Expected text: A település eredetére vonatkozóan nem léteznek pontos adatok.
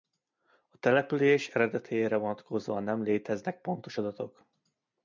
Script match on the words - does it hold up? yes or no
yes